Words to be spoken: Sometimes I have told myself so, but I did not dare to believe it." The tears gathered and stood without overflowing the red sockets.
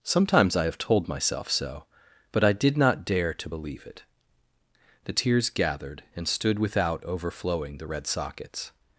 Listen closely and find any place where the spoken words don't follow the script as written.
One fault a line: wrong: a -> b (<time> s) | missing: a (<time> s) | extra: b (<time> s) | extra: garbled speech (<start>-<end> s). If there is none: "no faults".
no faults